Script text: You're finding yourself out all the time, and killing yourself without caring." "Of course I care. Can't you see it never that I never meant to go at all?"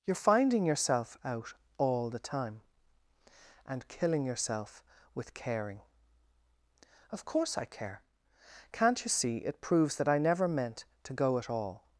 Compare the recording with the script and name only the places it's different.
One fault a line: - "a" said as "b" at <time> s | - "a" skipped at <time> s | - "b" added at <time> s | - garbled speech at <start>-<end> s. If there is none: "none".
- "without" said as "with" at 5.1 s
- "never" said as "proves" at 9.6 s